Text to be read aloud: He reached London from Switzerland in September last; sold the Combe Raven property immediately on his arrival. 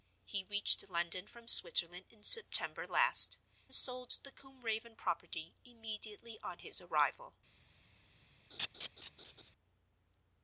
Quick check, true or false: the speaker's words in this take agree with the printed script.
true